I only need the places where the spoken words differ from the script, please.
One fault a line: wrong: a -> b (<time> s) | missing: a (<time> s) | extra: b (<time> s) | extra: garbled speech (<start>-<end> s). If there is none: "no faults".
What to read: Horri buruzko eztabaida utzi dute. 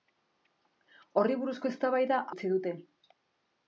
no faults